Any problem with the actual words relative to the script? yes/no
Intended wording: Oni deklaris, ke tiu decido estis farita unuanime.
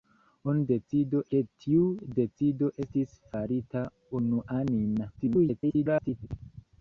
yes